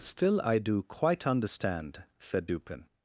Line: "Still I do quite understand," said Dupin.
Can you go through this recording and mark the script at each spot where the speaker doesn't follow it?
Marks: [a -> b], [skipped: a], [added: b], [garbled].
"Still I do quite understand," said Dupin.